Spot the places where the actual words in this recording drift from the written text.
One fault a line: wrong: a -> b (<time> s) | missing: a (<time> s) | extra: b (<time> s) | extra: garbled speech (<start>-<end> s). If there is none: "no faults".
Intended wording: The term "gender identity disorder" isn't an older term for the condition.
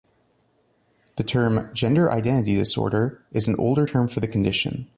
wrong: isn't -> is (3.3 s)